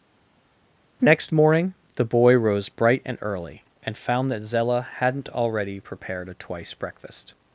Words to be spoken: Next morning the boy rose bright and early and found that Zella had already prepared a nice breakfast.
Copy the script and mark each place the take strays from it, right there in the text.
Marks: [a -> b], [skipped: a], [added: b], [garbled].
Next morning the boy rose bright and early and found that Zella [had -> hadn't] already prepared a [nice -> twice] breakfast.